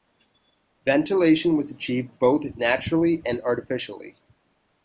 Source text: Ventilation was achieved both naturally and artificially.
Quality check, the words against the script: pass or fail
pass